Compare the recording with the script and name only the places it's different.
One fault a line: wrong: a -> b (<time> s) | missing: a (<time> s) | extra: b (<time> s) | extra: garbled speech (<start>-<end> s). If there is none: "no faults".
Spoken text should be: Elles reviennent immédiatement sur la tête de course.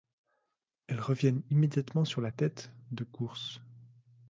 no faults